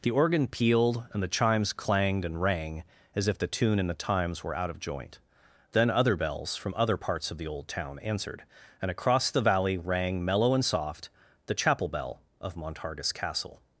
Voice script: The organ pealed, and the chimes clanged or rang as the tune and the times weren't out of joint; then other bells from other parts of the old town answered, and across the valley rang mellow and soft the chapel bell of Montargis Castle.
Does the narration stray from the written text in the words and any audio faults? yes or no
yes